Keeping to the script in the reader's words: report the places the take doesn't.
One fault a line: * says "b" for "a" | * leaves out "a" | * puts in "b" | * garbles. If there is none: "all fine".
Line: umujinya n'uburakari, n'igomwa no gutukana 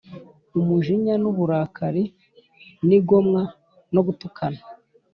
all fine